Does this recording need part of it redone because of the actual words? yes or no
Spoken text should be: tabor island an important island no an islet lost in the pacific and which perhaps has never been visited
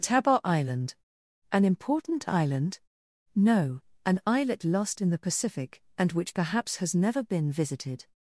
no